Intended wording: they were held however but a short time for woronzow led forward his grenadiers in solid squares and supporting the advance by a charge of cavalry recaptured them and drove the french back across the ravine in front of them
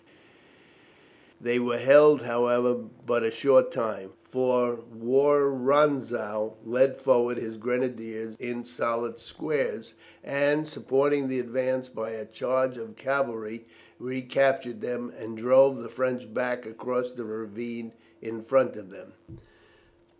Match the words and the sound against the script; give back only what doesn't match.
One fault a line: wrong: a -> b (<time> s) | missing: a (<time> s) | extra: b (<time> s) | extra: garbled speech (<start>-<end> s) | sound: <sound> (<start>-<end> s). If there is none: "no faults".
no faults